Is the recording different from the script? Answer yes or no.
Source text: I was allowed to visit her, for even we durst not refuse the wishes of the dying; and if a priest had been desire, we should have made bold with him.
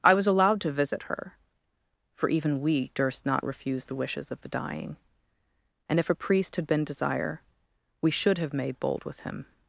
no